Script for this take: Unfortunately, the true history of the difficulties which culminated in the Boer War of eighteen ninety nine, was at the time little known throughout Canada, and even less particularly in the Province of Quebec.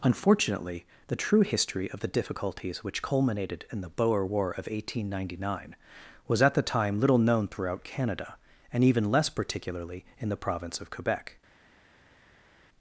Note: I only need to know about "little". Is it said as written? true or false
true